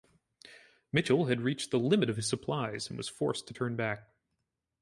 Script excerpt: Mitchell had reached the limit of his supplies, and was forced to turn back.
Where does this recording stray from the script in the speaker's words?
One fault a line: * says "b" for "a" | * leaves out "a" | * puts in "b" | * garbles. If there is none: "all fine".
all fine